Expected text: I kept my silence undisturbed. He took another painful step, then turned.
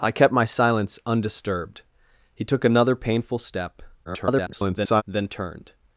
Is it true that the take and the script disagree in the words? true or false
true